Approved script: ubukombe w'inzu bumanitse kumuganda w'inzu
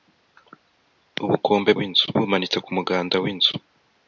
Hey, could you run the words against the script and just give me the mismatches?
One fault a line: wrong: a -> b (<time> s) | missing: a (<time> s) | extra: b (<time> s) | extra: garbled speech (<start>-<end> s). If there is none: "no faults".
no faults